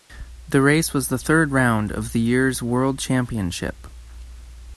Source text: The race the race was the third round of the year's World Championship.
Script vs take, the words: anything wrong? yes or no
yes